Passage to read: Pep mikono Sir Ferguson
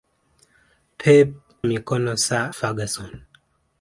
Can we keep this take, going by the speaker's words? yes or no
yes